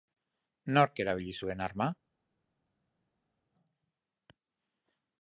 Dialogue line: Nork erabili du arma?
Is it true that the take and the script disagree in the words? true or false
true